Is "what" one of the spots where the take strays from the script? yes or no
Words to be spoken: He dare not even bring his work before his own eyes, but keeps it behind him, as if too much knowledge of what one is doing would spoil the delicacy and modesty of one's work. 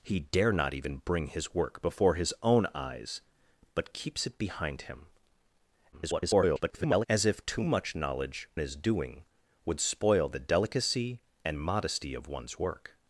yes